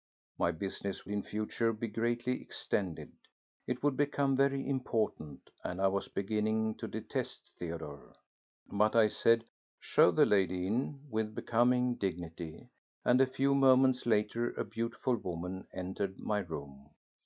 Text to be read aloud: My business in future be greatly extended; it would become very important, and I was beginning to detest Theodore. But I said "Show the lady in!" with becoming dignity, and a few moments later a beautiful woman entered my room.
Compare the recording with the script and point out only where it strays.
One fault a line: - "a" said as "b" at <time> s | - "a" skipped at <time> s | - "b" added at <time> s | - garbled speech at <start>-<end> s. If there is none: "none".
none